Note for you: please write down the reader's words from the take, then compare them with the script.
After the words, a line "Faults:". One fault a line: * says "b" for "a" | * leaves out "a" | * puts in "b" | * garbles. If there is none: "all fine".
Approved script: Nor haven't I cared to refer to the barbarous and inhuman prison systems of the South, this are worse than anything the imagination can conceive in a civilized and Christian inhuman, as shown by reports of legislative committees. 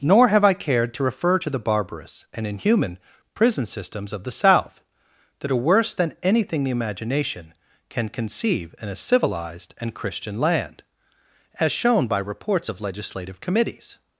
Nor have I cared to refer to the barbarous and inhuman prison systems of the South, that are worse than anything the imagination can conceive in a civilized and Christian land, as shown by reports of legislative committees.
Faults:
* says "have" for "haven't"
* says "that" for "this"
* says "land" for "inhuman"